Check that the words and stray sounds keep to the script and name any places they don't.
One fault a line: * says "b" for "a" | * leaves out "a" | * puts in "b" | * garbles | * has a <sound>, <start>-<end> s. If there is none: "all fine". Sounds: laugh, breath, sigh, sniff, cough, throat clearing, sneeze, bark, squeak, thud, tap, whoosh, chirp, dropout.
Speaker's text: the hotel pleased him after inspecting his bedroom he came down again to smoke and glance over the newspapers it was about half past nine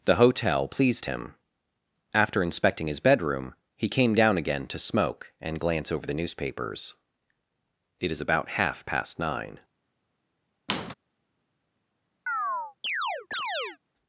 * says "is" for "was"
* has a squeak, 10.7-10.9 s
* has a chirp, 12.3-13.8 s